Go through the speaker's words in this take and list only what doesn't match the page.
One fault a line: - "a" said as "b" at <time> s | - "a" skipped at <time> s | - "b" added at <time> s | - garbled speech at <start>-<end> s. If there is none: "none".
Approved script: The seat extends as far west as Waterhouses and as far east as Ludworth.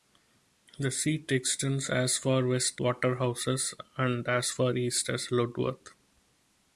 - "as" skipped at 2.8 s